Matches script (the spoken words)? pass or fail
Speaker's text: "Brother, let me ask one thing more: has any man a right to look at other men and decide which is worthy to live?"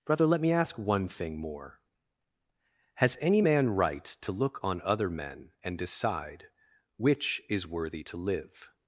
fail